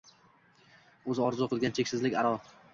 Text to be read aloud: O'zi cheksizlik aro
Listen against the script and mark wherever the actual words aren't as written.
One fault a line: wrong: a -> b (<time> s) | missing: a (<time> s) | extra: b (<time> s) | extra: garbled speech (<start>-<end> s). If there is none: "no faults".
extra: orzu qilgan (1.3 s)